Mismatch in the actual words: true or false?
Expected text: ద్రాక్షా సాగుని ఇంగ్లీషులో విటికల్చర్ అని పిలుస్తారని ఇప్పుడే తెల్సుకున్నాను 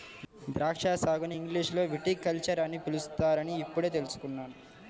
false